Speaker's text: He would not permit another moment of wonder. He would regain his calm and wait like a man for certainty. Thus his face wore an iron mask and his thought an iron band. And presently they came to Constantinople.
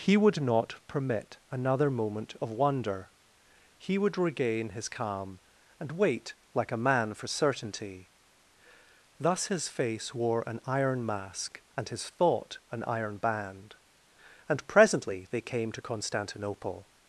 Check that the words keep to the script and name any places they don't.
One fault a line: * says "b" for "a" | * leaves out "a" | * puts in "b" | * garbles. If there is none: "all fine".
all fine